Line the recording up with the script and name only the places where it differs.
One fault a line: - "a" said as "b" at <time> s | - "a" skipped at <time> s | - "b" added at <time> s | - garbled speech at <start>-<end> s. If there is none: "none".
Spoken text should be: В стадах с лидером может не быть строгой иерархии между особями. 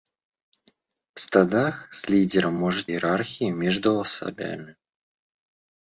- "не быть строгой" skipped at 2.9 s